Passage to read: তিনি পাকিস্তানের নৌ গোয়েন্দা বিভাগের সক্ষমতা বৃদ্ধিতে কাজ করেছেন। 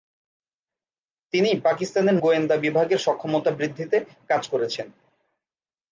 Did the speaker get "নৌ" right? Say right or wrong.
wrong